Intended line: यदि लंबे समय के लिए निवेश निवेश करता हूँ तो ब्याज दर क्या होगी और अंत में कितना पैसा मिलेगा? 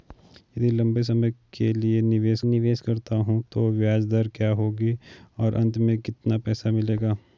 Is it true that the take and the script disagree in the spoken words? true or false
false